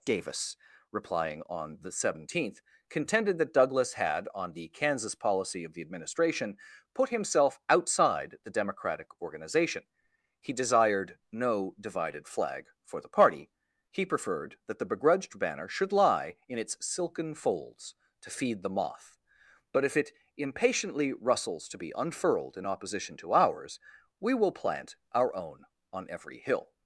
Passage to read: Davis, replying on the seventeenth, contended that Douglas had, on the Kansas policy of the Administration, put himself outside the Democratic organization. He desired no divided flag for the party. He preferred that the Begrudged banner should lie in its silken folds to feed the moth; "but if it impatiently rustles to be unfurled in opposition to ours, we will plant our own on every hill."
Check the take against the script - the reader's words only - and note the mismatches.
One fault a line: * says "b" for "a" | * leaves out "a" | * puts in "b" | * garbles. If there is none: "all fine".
all fine